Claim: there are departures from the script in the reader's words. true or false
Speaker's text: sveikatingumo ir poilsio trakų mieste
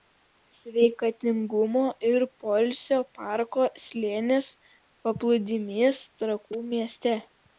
true